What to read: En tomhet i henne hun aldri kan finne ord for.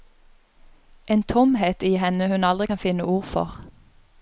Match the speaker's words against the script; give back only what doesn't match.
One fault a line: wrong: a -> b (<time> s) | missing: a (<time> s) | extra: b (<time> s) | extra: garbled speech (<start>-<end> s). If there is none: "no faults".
no faults